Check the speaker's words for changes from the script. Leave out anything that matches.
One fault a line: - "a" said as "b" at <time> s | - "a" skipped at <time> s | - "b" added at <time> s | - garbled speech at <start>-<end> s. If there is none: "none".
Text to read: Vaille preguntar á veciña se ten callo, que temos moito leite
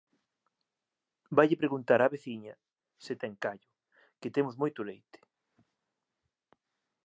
none